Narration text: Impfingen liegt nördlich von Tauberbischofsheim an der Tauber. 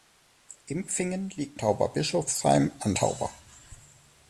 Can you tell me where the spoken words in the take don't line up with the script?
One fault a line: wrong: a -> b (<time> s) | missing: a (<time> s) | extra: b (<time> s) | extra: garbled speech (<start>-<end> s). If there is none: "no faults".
missing: nördlich von (1.6 s)
missing: der (2.9 s)